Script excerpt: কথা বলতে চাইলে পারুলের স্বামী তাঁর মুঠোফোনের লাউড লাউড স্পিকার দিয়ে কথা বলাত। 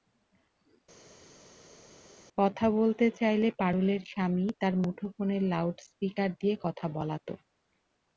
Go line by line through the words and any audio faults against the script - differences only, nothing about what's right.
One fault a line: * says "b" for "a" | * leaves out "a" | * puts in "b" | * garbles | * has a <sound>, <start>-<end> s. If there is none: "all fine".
* leaves out "লাউড"